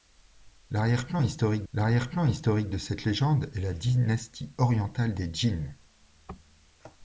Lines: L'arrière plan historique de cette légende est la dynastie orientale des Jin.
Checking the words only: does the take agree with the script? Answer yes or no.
no